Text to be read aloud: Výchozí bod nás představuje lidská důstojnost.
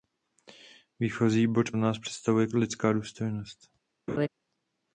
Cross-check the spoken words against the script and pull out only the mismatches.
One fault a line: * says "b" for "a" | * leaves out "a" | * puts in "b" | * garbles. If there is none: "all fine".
all fine